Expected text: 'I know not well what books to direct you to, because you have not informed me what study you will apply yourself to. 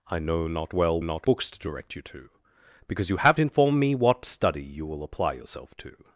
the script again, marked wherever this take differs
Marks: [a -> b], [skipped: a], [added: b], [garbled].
'I know not well [what -> not] books to direct you to, because you have [skipped: not] informed me what study you will apply yourself to.